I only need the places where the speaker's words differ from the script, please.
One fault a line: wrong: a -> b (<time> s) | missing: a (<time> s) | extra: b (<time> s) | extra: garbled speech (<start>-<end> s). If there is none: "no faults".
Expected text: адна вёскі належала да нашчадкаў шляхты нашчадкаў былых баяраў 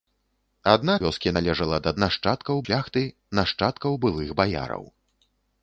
no faults